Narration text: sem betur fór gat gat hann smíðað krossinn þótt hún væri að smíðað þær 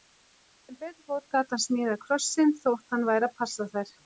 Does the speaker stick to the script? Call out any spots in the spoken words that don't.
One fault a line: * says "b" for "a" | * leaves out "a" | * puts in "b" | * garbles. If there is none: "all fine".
* leaves out "gat"
* says "hann" for "hún"
* says "passa" for "smíðað"